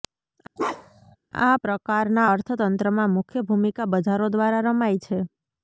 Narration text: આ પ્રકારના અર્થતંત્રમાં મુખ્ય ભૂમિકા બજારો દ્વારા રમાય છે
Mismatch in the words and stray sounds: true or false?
true